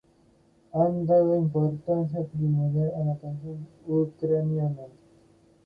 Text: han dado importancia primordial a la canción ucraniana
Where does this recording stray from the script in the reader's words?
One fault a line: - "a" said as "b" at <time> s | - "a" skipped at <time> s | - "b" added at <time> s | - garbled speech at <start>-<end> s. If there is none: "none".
none